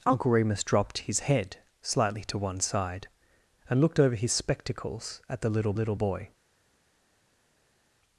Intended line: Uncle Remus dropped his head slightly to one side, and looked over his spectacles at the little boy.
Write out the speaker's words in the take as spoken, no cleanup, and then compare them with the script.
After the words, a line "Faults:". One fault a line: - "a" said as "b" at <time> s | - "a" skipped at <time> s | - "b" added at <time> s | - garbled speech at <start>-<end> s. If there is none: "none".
Uncle Remus dropped his head slightly to one side, and looked over his spectacles at the little little boy.
Faults:
- "little" added at 5.7 s